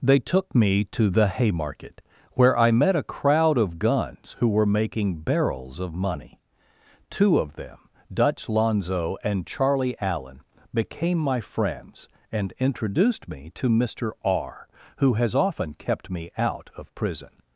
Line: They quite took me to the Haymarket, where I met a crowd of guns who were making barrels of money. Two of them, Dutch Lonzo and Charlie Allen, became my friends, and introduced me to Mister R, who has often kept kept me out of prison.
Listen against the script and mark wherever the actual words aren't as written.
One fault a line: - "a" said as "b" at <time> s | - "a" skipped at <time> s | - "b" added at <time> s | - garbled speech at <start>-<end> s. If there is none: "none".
- "quite" skipped at 0.2 s
- "kept" skipped at 16.1 s